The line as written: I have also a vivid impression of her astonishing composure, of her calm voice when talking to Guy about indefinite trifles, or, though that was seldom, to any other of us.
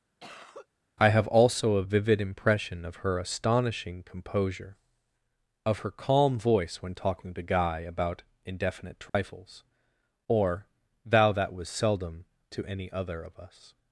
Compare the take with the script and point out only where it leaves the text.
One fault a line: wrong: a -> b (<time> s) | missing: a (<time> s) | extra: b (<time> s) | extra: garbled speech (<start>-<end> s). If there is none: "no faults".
wrong: though -> thou (11.1 s)